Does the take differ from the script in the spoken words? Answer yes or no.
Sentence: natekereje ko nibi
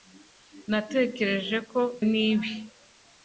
no